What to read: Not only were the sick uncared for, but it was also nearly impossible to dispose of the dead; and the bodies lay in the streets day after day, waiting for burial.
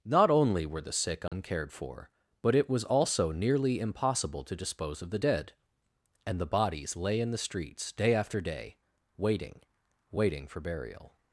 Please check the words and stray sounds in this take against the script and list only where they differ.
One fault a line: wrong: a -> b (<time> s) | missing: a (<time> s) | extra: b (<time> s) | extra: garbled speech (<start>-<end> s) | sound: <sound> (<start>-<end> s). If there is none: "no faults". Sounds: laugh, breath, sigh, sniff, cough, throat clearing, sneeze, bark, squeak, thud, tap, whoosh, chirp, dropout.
sound: dropout (1.3-1.3 s)
extra: waiting (10.1 s)